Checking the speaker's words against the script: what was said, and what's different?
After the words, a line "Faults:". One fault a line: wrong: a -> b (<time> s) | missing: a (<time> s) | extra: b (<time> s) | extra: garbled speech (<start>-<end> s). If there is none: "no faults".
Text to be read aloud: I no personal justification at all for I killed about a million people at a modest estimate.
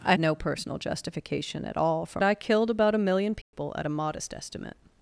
I no personal justification at all for I killed about a million people at a modest estimate.
Faults:
no faults